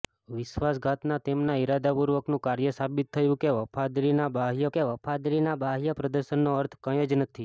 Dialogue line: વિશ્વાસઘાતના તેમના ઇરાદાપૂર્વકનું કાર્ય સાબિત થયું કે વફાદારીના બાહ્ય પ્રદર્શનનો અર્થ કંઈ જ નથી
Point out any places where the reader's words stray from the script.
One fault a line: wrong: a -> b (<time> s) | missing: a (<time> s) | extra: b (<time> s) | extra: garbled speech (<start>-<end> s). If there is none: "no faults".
extra: કે વફાદારીના બાહ્ય (4.7 s)